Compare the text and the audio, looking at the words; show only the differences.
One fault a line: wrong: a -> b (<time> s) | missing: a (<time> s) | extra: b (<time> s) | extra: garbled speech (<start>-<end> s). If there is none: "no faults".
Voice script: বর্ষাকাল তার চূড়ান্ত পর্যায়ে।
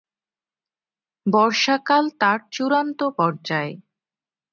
no faults